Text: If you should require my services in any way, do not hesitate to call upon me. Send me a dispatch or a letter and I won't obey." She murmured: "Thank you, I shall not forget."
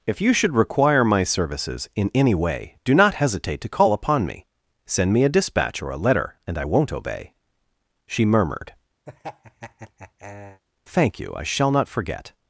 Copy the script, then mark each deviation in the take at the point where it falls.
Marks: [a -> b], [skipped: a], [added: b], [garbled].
If you should require my services in any way, do not hesitate to call upon me. Send me a dispatch or a letter and I won't obey." She murmured: "Thank you, I shall not forget."